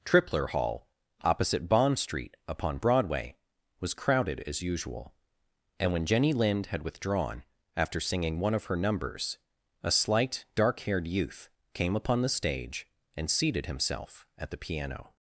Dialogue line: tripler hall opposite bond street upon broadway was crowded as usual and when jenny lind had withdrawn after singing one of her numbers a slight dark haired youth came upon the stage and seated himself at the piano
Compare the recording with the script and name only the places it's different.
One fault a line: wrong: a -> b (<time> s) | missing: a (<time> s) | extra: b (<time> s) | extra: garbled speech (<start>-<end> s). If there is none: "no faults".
no faults